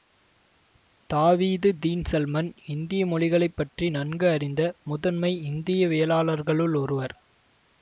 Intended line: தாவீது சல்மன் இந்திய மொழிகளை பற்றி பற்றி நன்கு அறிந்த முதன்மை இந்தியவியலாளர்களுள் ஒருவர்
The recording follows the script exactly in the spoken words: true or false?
false